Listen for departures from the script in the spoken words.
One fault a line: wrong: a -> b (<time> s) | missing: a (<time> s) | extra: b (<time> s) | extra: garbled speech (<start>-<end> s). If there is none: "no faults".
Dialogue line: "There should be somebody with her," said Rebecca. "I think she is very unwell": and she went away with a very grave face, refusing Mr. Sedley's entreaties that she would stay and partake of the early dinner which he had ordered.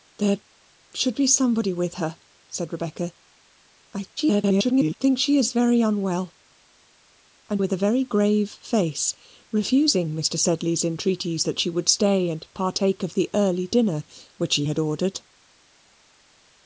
extra: garbled speech (4.2-4.9 s)
missing: she went away (7.6 s)